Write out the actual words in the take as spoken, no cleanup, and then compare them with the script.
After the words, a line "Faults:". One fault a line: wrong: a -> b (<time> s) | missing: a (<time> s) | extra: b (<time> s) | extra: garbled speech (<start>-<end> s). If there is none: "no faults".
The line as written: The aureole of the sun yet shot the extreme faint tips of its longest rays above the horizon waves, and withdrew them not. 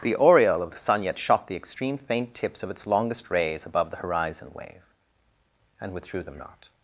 The aureole of the sun yet shot the extreme faint tips of its longest rays above the horizon wave, and withdrew them not.
Faults:
wrong: waves -> wave (4.5 s)